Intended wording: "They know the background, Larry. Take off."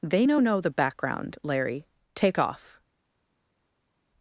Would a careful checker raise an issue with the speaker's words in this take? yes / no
yes